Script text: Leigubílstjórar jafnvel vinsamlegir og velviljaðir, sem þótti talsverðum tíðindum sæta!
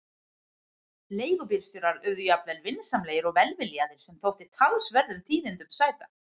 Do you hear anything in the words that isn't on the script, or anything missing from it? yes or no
yes